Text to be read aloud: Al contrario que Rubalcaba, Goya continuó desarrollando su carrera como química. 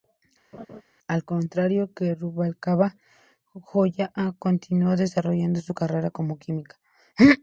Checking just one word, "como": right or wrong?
right